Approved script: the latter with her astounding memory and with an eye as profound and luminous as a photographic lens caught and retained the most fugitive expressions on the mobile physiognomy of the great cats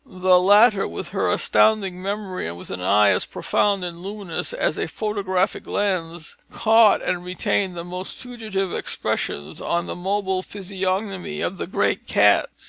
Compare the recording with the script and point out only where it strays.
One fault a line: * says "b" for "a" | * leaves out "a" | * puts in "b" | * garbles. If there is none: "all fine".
all fine